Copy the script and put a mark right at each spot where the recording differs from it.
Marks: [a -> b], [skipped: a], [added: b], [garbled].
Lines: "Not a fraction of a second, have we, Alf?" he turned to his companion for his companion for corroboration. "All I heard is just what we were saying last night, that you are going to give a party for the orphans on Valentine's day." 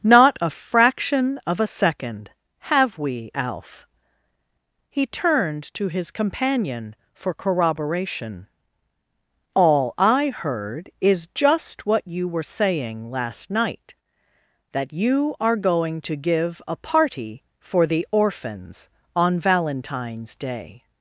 "Not a fraction of a second, have we, Alf?" he turned to his companion for [skipped: his companion for] corroboration. "All I heard is just what [we -> you] were saying last night, that you are going to give a party for the orphans on Valentine's day."